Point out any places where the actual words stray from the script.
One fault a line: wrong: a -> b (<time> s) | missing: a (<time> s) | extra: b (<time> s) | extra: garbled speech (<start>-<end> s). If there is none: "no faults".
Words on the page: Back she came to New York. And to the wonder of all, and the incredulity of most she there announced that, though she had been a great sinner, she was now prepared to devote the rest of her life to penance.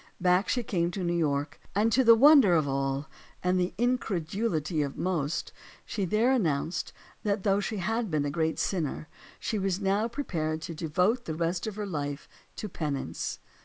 no faults